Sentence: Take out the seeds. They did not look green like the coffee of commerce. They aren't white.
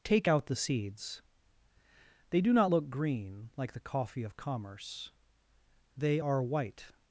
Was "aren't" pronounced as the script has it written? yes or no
no